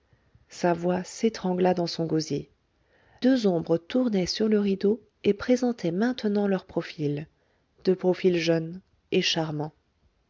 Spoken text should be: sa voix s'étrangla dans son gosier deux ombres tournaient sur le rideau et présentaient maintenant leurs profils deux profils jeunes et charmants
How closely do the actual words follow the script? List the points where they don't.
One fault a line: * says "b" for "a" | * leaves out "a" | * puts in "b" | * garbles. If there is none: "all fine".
all fine